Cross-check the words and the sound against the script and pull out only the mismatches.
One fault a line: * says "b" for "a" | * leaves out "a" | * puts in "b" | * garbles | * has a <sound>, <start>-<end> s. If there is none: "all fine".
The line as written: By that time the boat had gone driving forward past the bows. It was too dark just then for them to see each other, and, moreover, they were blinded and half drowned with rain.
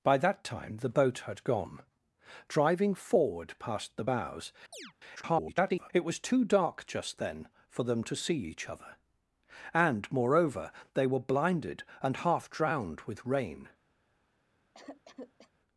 * has a chirp, 4.7-4.9 s
* garbles
* has a cough, 14.7-15.5 s